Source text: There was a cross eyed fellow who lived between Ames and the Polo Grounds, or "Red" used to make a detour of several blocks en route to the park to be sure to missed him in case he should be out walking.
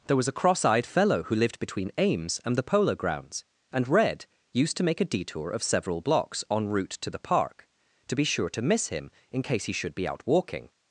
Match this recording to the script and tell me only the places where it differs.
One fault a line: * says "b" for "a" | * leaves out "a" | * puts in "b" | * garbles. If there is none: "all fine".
* says "and" for "or"
* says "miss" for "missed"